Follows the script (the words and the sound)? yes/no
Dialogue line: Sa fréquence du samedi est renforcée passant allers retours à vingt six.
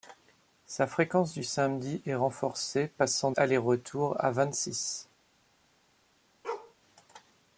no